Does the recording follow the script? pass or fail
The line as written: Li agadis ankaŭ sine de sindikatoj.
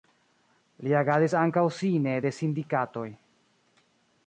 pass